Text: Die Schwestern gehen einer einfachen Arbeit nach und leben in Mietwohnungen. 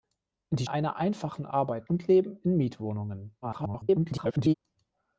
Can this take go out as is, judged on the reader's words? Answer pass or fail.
fail